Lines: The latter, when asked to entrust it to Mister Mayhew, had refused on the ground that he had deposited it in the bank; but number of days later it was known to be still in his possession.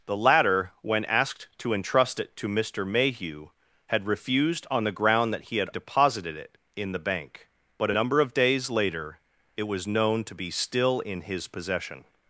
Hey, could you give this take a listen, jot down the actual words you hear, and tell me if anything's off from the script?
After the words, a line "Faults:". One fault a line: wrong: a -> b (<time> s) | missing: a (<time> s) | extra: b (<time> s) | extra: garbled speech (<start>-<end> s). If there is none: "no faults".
The latter, when asked to entrust it to Mister Mayhew, had refused on the ground that he had deposited it in the bank; but number of days later it was known to be still in his possession.
Faults:
no faults